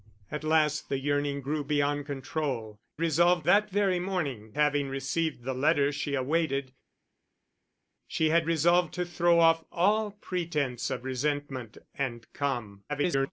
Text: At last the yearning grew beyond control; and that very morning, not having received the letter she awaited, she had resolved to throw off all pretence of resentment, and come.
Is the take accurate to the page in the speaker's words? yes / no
no